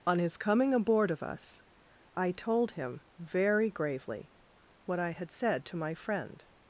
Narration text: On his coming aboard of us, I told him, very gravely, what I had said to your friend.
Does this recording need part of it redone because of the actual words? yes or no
yes